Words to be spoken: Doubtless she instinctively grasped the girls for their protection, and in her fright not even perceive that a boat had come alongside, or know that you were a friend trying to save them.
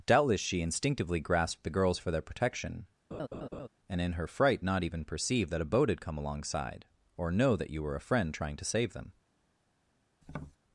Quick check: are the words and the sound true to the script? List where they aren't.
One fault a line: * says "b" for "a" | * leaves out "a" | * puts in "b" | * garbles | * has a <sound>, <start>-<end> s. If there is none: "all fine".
* has a laugh, 3.1-3.7 s
* has a tap, 10.2-10.6 s